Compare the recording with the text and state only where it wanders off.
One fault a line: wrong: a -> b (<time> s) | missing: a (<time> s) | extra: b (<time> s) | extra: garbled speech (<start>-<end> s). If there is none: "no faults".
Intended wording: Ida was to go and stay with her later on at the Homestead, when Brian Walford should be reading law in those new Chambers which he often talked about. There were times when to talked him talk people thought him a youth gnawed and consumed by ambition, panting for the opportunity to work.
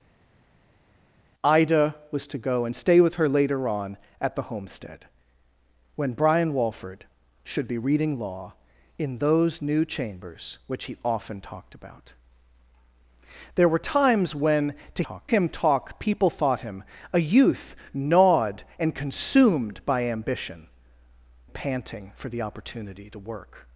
no faults